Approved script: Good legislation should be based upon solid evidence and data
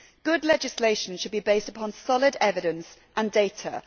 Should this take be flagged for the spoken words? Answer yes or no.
no